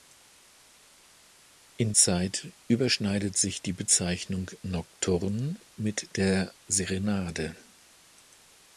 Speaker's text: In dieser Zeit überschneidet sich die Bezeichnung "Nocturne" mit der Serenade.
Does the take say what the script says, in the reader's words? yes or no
no